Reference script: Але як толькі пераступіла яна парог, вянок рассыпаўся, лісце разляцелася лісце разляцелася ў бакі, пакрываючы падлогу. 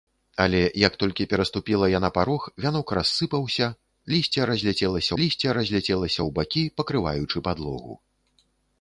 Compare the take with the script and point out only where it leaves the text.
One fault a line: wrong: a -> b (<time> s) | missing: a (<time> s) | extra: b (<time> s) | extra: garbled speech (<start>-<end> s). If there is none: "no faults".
no faults